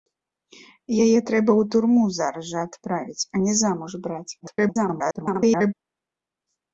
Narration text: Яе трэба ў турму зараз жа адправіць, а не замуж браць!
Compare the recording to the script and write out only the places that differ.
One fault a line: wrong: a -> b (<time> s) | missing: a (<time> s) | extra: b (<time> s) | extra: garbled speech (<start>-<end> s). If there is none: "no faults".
extra: garbled speech (4.4-5.7 s)